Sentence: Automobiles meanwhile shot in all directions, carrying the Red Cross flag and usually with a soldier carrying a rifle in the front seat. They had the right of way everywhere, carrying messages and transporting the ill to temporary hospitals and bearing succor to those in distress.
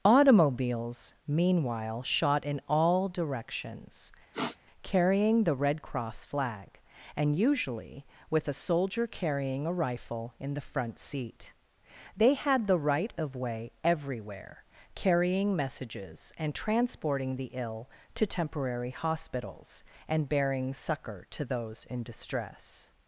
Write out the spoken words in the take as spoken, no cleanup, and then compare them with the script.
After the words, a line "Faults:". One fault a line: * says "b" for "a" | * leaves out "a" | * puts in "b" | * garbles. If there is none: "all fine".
Automobiles meanwhile shot in all directions, carrying the Red Cross flag and usually with a soldier carrying a rifle in the front seat. They had the right of way everywhere, carrying messages and transporting the ill to temporary hospitals and bearing succor to those in distress.
Faults:
all fine